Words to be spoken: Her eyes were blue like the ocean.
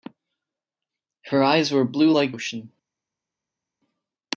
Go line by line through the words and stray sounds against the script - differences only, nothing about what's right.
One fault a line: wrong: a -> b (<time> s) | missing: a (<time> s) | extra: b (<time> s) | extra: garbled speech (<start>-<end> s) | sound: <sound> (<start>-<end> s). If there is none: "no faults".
missing: the (2.3 s)